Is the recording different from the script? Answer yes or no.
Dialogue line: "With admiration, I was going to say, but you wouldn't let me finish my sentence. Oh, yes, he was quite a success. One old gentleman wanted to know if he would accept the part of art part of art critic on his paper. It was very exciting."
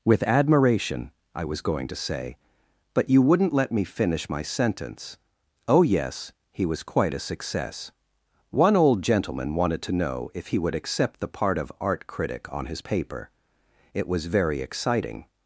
yes